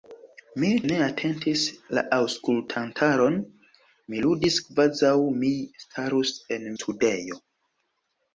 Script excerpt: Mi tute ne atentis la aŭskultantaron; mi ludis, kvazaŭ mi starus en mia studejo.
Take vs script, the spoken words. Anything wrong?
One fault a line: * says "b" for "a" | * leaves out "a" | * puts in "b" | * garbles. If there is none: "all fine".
* leaves out "tute"
* leaves out "mia"